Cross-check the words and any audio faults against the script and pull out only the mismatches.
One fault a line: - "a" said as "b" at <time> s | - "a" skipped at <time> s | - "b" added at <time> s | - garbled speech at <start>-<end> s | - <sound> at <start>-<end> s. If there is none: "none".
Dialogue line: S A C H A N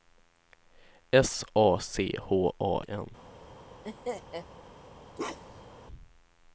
- laugh at 3.8-4.5 s
- bark at 5.2-5.8 s